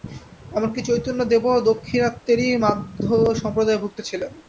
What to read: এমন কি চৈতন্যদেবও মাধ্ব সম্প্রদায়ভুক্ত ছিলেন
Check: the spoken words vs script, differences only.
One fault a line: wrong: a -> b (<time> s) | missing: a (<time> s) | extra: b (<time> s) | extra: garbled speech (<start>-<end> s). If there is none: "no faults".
extra: দাক্ষিণাত্যেরই (1.7 s)